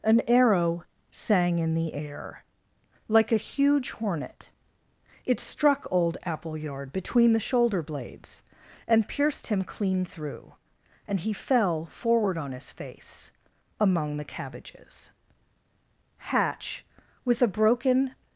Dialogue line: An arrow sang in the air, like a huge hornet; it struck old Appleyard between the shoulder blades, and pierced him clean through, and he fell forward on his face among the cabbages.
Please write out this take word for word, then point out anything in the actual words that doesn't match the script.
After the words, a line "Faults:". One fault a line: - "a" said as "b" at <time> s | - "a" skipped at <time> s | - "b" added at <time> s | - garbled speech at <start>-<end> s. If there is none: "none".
An arrow sang in the air, like a huge hornet; it struck old Appleyard between the shoulder blades, and pierced him clean through, and he fell forward on his face among the cabbages. Hatch, with a broken
Faults:
- "Hatch with a broken" added at 16.2 s